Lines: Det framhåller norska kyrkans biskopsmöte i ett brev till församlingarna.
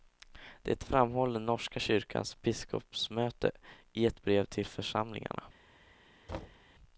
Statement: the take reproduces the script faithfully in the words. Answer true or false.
true